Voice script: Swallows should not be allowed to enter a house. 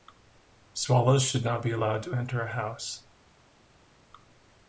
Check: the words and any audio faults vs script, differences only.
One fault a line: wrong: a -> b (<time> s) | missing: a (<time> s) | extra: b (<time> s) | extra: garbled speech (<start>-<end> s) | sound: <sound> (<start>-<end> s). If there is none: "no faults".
no faults